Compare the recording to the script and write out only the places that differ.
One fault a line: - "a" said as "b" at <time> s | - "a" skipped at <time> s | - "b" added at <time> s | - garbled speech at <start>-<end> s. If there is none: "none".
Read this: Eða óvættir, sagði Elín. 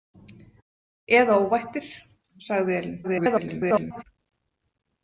- garbled speech at 3.0-4.0 s